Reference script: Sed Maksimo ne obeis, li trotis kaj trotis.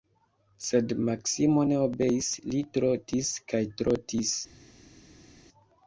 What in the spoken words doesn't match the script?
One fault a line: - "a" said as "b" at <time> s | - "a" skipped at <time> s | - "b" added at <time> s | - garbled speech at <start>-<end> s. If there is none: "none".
none